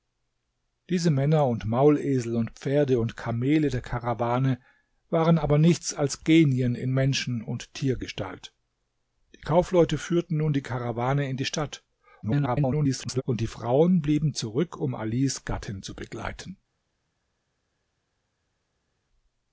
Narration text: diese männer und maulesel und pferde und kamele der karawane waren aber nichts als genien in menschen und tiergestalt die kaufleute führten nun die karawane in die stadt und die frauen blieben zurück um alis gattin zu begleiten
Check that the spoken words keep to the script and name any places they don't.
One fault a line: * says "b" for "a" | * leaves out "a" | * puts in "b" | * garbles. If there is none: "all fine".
* garbles